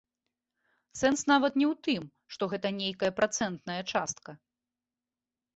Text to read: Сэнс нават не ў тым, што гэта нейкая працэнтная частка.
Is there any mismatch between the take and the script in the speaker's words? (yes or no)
no